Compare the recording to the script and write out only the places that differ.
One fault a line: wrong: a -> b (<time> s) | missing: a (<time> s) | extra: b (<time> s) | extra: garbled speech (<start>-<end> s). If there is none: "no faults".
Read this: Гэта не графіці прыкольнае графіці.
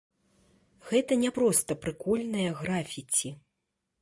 wrong: графіці -> проста (1.4 s)